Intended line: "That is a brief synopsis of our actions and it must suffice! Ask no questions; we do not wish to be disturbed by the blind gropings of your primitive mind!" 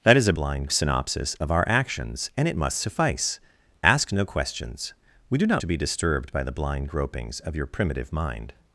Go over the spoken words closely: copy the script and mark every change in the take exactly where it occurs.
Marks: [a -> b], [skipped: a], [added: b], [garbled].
"That is a [brief -> blind] synopsis of our actions and it must suffice! Ask no questions; we do not [skipped: wish] to be disturbed by the blind gropings of your primitive mind!"